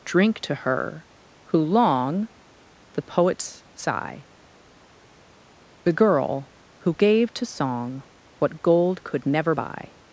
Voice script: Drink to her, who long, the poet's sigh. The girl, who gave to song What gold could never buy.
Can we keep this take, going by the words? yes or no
yes